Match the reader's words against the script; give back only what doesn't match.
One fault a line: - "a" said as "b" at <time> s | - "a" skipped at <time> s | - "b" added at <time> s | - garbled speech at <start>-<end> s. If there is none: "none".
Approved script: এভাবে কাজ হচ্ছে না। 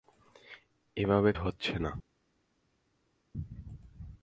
- "কাজ" skipped at 1.3 s